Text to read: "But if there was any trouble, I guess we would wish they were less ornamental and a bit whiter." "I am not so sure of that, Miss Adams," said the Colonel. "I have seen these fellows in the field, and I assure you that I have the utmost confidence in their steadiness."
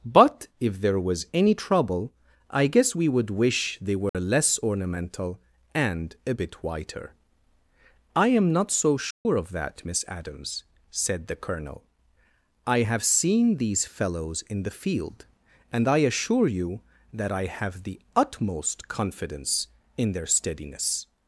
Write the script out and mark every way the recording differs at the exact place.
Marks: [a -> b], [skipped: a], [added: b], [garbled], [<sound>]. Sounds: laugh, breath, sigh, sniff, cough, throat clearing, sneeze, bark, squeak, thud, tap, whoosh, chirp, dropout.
"But if there was any trouble, I guess we would wish they were [dropout] less ornamental and a bit whiter." "I am not so sure [dropout] of that, Miss Adams," said the Colonel. "I have seen these fellows in the field, and I assure you that I have the utmost confidence in their steadiness."